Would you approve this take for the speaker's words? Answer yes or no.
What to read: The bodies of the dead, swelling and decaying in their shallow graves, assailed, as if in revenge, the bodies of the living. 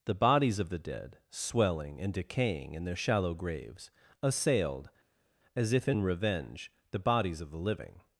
yes